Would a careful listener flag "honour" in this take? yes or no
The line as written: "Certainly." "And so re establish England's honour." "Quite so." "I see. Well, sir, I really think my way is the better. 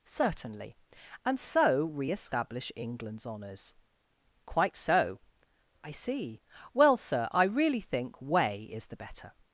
yes